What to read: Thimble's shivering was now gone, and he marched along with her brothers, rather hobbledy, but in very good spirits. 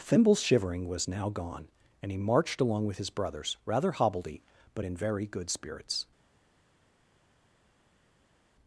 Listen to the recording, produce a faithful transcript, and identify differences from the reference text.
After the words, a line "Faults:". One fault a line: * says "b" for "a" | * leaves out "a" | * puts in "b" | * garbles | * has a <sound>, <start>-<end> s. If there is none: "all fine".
Thimble's shivering was now gone, and he marched along with his brothers, rather hobbledy, but in very good spirits.
Faults:
* says "his" for "her"